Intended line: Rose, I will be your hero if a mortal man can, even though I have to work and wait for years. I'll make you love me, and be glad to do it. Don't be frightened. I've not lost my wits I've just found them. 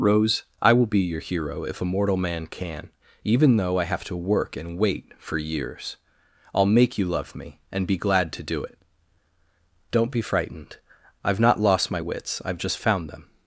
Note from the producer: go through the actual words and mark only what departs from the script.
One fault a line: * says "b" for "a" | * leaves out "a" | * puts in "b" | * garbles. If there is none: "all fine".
all fine